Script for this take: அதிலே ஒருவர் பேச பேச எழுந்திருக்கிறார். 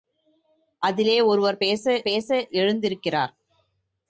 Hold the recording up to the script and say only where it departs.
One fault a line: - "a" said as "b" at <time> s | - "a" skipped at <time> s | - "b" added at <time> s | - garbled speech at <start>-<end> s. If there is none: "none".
none